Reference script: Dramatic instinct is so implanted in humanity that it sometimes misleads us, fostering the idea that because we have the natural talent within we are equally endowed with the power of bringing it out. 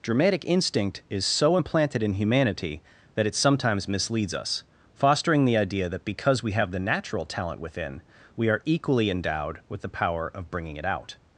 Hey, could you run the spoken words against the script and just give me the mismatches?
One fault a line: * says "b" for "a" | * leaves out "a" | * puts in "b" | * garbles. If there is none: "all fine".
all fine